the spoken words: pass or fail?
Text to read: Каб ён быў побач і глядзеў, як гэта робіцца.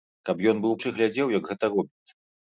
fail